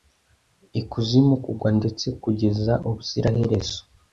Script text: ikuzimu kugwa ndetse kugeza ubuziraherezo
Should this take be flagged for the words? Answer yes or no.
no